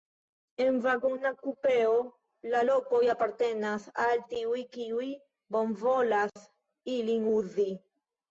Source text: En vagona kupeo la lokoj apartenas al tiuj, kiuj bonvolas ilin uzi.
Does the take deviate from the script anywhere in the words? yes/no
no